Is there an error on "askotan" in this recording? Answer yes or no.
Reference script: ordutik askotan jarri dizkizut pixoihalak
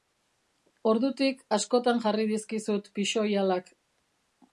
no